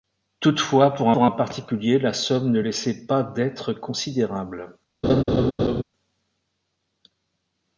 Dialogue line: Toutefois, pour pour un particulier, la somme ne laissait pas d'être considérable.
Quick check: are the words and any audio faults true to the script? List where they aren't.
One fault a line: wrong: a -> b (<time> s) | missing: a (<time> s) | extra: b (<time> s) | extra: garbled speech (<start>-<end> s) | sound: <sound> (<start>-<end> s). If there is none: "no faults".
sound: laugh (5.0-5.8 s)